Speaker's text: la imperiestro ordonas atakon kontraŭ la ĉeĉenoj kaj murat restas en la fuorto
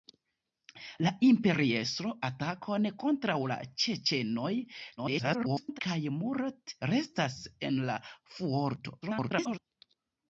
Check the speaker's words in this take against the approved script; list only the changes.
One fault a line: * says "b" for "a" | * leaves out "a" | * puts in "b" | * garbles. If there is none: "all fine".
* leaves out "ordonas"
* garbles
* garbles